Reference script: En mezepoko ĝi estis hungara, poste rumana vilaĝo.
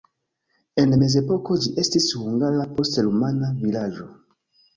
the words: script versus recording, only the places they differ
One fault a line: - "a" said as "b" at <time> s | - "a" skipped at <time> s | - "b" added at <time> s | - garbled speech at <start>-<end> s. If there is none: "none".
none